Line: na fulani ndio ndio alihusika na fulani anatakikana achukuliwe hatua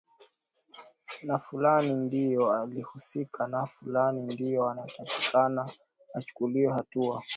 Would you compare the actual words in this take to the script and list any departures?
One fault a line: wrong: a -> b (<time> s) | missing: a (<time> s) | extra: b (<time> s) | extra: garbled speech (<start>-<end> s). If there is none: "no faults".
missing: ndio (2.5 s)
extra: ndio (4.2 s)